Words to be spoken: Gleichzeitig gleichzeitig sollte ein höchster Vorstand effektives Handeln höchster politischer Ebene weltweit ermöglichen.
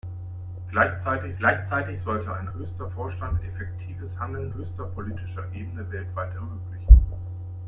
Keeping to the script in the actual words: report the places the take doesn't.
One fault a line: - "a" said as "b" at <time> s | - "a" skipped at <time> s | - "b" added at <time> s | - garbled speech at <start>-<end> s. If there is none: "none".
none